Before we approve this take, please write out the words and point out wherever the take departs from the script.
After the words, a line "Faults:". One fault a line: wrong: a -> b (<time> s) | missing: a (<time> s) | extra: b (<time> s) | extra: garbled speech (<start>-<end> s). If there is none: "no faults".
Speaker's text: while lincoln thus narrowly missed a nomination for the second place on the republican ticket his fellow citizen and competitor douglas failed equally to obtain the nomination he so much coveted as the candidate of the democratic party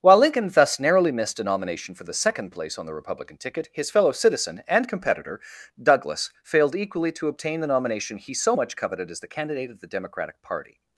while lincoln thus narrowly missed a nomination for the second place on the republican ticket his fellow citizen and competitor douglas failed equally to obtain the nomination he so much coveted as the candidate of the democratic party
Faults:
no faults